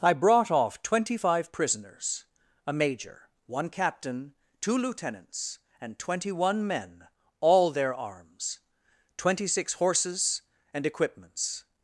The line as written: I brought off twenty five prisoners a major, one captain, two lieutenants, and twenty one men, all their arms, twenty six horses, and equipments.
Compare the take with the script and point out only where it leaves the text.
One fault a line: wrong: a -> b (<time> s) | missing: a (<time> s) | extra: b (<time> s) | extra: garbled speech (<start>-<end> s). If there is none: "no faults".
no faults